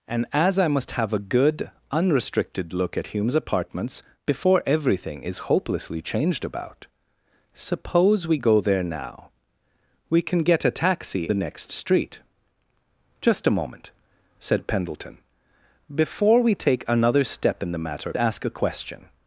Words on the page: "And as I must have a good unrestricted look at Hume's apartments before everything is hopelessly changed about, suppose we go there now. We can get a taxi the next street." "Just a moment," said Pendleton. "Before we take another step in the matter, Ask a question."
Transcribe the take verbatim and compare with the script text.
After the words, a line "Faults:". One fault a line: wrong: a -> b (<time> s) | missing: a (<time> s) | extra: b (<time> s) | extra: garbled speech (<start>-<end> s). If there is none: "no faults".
"And as I must have a good unrestricted look at Hume's apartments before everything is hopelessly changed about, suppose we go there now. We can get a taxi the next street." "Just a moment," said Pendleton. "Before we take another step in the matter, Ask a question."
Faults:
no faults